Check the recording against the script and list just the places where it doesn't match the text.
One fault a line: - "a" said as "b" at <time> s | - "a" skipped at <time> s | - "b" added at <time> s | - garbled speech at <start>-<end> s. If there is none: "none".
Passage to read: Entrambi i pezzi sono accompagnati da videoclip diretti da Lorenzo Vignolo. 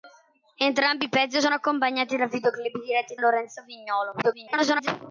- "da" skipped at 3.2 s
- garbled speech at 4.2-4.9 s